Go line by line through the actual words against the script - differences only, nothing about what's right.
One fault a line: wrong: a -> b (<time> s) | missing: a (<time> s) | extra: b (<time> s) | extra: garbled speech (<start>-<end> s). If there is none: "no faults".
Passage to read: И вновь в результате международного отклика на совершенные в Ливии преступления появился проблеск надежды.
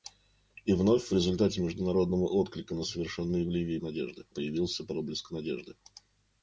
wrong: преступления -> надежды (3.8 s)